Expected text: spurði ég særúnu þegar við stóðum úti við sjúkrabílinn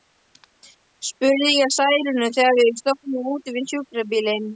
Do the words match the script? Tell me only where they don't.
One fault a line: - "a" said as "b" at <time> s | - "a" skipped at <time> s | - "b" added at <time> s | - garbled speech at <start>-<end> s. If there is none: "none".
none